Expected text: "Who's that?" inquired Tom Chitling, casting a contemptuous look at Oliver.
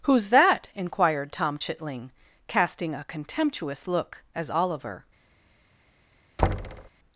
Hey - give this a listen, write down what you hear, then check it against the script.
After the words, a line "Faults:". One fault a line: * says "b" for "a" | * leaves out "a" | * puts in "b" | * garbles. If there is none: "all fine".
"Who's that?" inquired Tom Chitling, casting a contemptuous look as Oliver.
Faults:
* says "as" for "at"